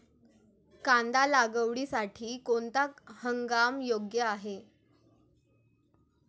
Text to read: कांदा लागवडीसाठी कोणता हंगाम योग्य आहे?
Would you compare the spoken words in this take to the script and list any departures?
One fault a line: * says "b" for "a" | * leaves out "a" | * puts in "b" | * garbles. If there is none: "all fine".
all fine